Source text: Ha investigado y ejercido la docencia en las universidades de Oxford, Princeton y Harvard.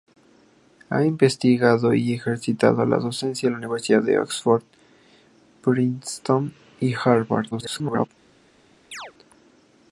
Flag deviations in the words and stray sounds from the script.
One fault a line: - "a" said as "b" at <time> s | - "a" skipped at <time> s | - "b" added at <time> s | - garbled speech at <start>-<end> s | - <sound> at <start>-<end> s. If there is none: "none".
- garbled speech at 7.5-8.1 s
- chirp at 8.9-9.1 s